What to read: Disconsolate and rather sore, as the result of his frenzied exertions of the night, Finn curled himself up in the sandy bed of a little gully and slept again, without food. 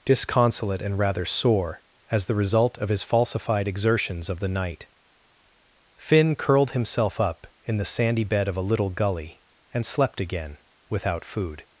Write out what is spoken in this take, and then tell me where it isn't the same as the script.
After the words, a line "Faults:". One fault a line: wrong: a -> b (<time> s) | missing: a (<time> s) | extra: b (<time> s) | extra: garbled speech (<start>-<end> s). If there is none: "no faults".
Disconsolate and rather sore, as the result of his falsified exertions of the night, Finn curled himself up in the sandy bed of a little gully and slept again, without food.
Faults:
wrong: frenzied -> falsified (3.0 s)